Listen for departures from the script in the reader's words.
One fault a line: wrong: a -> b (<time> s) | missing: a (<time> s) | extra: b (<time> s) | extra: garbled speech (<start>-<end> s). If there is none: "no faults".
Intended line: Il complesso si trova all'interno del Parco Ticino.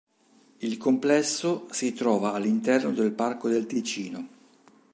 extra: del (3.5 s)